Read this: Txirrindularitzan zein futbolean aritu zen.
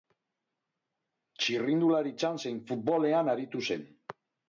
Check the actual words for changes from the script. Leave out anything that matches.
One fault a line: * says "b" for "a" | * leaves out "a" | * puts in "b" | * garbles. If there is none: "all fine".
all fine